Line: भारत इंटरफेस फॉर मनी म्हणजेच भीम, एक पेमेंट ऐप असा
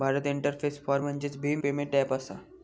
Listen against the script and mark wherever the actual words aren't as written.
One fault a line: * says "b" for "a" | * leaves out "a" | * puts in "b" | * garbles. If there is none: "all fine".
* leaves out "मनी"
* leaves out "एक"